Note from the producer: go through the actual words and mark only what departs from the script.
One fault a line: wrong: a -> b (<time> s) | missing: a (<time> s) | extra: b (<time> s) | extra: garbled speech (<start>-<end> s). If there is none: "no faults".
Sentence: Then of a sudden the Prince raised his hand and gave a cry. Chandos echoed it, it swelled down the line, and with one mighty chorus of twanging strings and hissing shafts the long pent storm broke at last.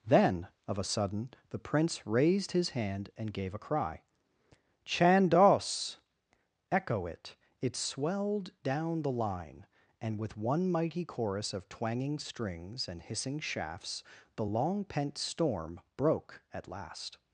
wrong: echoed -> echo (6.7 s)